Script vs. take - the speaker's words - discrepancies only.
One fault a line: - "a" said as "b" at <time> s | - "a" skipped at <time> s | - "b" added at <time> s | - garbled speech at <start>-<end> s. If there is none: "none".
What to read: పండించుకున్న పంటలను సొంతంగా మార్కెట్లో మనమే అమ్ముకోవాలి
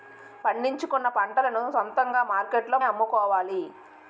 - "మనమే" skipped at 2.8 s